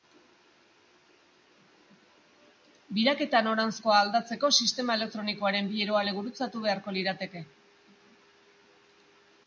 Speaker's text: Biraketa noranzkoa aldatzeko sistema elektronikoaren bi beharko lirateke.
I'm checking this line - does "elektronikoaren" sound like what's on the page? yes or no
yes